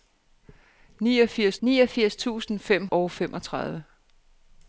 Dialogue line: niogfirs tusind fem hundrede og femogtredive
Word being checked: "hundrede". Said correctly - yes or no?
no